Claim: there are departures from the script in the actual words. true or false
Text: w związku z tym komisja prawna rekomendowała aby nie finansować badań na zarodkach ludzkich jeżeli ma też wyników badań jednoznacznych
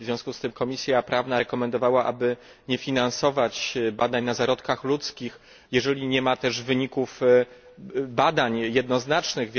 true